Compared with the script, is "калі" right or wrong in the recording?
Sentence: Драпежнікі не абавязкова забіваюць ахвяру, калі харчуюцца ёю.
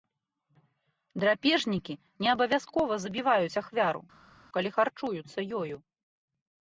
right